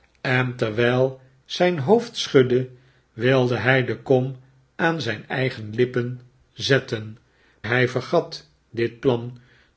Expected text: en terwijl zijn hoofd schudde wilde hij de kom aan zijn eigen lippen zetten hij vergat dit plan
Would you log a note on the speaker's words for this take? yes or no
no